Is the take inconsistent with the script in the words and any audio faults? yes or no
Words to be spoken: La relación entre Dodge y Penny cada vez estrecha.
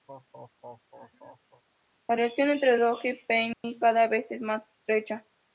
yes